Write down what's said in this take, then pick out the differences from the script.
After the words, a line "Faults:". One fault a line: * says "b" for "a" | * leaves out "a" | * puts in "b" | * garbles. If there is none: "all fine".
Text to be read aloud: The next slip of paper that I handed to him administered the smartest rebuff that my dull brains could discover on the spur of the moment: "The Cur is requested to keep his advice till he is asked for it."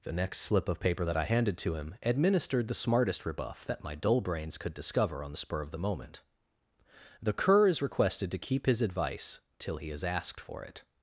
The next slip of paper that I handed to him administered the smartest rebuff that my dull brains could discover on the spur of the moment: "The Cur is requested to keep his advice till he is asked for it."
Faults:
all fine